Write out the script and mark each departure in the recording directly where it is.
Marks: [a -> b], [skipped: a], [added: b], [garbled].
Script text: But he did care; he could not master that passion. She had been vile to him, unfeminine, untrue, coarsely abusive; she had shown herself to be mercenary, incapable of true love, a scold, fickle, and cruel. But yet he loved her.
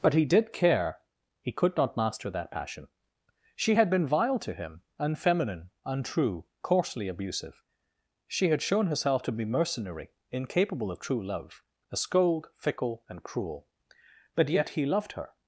But he did care; he could not master that passion. She had been vile to him, unfeminine, untrue, coarsely abusive; she had shown herself to be mercenary, incapable of true love, a scold, fickle, and cruel. But yet he loved her.